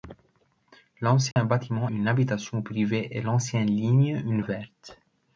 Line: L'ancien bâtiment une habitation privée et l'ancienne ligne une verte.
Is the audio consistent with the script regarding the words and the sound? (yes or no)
no